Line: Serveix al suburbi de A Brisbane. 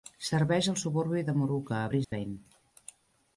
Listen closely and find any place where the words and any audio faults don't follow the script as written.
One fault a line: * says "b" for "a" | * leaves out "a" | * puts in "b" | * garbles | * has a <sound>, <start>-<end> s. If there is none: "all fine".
* puts in "Moorooka"
* has a dropout, 2.0-2.1 s